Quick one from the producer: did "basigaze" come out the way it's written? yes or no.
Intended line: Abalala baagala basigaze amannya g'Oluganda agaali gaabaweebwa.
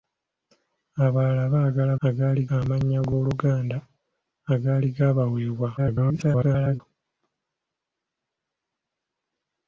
no